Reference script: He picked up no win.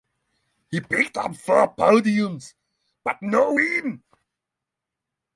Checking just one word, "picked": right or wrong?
right